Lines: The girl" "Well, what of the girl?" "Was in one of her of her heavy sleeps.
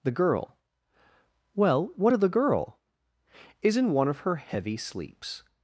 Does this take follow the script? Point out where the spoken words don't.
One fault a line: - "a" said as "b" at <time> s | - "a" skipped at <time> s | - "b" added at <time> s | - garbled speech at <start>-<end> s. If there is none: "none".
- "Was" said as "Is" at 3.6 s
- "of her" skipped at 4.4 s